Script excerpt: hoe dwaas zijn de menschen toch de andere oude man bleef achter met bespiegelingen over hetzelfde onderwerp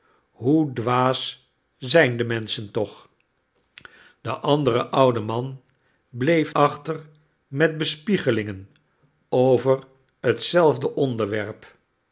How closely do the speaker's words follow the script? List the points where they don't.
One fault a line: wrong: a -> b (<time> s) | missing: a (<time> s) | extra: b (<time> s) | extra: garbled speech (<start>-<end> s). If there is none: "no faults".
no faults